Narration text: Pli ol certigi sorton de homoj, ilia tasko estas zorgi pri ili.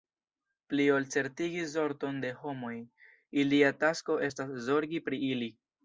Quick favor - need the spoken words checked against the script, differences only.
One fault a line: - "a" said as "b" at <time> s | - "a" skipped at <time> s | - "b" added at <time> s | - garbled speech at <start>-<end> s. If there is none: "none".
none